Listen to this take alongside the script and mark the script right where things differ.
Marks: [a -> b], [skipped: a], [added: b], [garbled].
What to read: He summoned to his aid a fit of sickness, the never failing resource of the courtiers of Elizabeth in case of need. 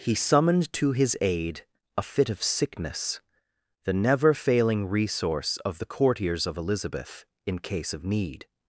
He summoned to his aid a fit of sickness, the never failing resource of the courtiers of Elizabeth in case of need.